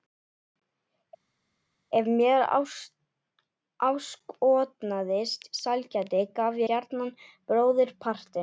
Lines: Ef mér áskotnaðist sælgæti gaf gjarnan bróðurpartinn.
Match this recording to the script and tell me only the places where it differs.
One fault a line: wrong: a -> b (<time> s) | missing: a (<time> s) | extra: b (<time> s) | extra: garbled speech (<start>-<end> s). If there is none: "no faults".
no faults